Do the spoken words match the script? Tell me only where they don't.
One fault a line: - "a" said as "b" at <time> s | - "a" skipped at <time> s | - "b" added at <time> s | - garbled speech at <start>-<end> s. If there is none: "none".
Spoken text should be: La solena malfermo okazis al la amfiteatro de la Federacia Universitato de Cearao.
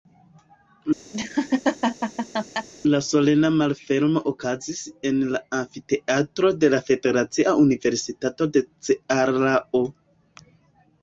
- "al" said as "en" at 5.1 s